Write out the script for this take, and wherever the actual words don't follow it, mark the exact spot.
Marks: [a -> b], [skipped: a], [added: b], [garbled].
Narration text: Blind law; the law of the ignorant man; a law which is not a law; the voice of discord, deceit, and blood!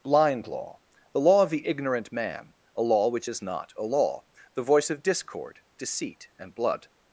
Blind law; the law of the ignorant man; a law which is not a law; the voice of discord, deceit, and blood!